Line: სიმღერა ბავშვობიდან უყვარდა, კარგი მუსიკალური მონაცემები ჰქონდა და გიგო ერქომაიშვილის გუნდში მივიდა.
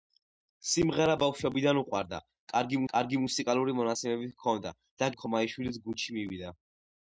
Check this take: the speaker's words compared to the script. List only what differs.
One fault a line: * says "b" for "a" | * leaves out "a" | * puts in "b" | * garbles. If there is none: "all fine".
* puts in "კარგი"
* leaves out "გიგო"